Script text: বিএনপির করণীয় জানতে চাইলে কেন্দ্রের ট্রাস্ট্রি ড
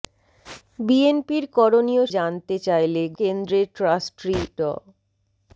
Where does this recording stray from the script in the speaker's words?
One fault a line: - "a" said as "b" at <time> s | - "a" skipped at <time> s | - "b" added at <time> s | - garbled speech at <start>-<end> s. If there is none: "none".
none